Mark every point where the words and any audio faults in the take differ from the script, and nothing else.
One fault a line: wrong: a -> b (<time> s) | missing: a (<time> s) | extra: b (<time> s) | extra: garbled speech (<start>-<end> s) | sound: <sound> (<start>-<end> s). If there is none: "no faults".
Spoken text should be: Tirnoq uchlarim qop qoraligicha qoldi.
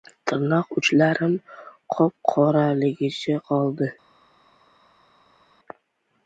no faults